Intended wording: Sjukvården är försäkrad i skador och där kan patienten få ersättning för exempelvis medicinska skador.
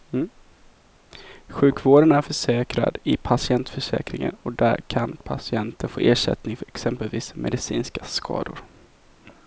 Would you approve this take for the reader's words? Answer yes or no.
no